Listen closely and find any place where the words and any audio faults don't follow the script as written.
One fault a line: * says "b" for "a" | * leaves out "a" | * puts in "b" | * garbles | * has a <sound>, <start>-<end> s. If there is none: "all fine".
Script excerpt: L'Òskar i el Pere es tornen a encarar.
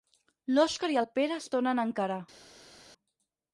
all fine